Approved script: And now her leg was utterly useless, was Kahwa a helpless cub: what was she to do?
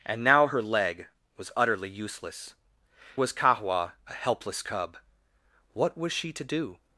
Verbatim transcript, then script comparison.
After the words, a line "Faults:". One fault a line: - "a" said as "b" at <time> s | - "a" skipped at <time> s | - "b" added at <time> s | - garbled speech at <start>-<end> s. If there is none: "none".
And now her leg was utterly useless, was Kahwa a helpless cub: what was she to do?
Faults:
none